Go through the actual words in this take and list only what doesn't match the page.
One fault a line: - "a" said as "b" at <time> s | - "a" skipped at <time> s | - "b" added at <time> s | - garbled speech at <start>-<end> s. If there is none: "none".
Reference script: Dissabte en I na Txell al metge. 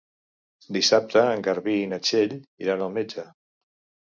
- "Garbí" added at 1.5 s
- "iran" added at 2.7 s